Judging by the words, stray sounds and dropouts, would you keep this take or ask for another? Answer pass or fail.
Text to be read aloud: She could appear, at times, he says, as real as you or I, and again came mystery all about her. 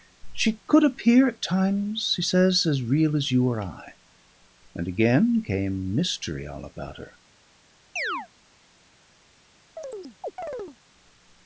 fail